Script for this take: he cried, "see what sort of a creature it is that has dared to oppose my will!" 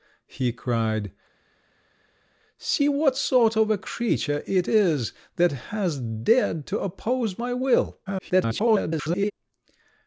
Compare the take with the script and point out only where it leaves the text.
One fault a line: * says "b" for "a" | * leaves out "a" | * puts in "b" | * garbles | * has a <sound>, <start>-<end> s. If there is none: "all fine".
* garbles